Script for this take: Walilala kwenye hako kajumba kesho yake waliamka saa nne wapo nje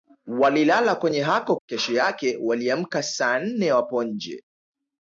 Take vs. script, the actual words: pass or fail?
fail